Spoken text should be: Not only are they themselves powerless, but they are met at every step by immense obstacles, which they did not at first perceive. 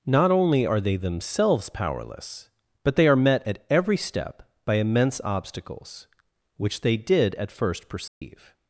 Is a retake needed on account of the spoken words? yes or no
yes